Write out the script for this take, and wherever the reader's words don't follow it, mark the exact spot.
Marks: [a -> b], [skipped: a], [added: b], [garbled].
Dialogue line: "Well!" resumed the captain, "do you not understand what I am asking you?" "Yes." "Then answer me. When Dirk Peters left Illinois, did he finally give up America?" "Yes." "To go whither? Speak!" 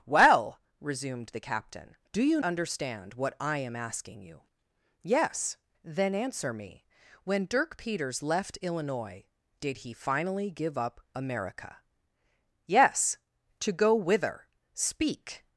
"Well!" resumed the captain, "do you [skipped: not] understand what I am asking you?" "Yes." "Then answer me. When Dirk Peters left Illinois, did he finally give up America?" "Yes." "To go whither? Speak!"